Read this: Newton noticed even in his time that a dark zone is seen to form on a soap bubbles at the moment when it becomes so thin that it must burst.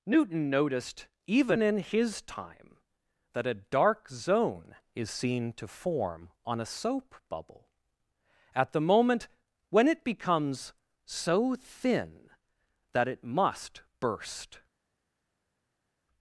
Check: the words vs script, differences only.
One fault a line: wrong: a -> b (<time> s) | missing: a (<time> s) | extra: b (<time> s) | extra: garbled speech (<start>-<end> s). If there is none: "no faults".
wrong: bubbles -> bubble (7.3 s)